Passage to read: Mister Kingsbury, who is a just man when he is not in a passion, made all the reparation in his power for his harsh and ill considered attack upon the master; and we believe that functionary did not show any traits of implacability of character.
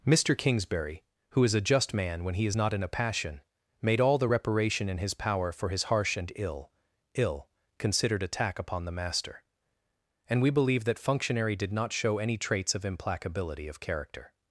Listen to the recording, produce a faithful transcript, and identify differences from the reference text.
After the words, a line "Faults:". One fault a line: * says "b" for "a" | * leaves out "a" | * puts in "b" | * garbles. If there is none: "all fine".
Mister Kingsbury, who is a just man when he is not in a passion, made all the reparation in his power for his harsh and ill ill considered attack upon the master; and we believe that functionary did not show any traits of implacability of character.
Faults:
* puts in "ill"